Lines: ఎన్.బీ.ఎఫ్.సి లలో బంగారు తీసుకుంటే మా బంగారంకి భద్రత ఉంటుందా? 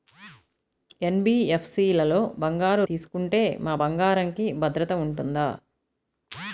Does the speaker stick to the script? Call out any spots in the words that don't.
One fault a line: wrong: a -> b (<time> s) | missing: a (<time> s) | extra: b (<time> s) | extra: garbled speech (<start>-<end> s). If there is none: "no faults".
no faults